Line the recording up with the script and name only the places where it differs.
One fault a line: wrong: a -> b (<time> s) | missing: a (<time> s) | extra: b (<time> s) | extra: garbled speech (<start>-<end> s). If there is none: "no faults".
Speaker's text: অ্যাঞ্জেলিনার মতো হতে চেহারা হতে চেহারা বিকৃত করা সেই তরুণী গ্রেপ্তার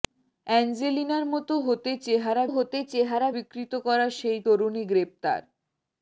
no faults